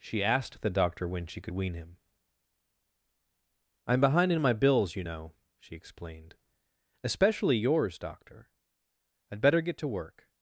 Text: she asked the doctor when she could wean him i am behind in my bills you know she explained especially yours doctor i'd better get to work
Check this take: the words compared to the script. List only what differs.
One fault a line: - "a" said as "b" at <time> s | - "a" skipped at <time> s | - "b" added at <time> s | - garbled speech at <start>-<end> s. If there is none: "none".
none